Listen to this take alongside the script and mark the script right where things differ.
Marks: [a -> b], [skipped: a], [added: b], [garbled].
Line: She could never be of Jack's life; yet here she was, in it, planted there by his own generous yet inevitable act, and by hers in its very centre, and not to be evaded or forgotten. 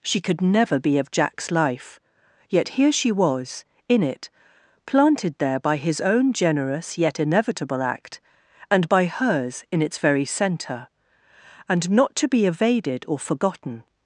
She could never be of Jack's life; yet here she was, in it, planted there by his own generous yet inevitable act, and by hers in its very centre, and not to be evaded or forgotten.